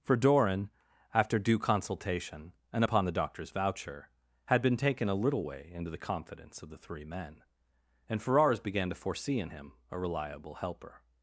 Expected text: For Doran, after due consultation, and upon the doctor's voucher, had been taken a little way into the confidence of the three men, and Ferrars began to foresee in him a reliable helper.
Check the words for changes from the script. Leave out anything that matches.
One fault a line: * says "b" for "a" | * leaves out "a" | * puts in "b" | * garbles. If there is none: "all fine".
all fine